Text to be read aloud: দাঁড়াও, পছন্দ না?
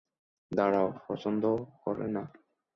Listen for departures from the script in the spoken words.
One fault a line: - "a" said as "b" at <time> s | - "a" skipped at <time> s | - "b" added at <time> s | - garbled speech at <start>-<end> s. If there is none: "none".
- "করে" added at 1.8 s